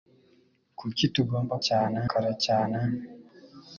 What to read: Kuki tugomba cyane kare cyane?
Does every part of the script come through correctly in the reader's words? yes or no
yes